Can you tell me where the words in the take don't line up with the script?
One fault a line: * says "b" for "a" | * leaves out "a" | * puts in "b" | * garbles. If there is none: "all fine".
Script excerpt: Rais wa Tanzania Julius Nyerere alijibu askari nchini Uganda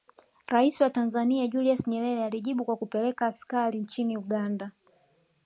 * puts in "kwa kupeleka"